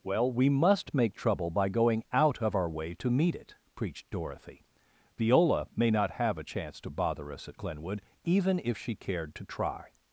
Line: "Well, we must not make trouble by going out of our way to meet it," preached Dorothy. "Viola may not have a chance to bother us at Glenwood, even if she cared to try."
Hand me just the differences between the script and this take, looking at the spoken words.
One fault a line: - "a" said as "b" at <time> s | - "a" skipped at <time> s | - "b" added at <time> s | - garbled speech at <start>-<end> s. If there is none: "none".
- "not" skipped at 0.9 s